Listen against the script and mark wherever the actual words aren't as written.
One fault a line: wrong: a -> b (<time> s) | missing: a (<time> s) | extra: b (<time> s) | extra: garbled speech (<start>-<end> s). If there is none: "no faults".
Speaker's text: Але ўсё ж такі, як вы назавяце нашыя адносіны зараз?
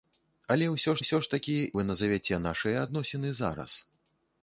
extra: ўсё (1.0 s)
missing: як (1.5 s)